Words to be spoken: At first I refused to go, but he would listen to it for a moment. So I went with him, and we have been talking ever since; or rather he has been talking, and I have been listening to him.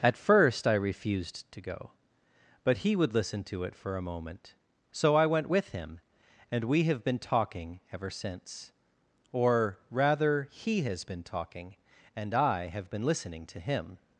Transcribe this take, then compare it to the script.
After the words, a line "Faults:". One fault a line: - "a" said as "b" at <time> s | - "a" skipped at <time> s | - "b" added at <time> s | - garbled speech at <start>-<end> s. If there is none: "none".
At first I refused to go, but he would listen to it for a moment. So I went with him, and we have been talking ever since; or rather he has been talking, and I have been listening to him.
Faults:
none